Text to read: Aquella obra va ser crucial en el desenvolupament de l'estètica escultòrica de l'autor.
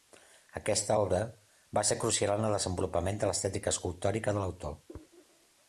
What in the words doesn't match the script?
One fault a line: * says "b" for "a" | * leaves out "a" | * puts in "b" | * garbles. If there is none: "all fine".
* says "Aquesta" for "Aquella"